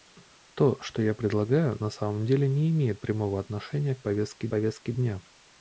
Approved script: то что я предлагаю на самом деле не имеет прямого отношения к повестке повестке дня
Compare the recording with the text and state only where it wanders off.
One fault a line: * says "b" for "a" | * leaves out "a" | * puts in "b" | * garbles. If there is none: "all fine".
all fine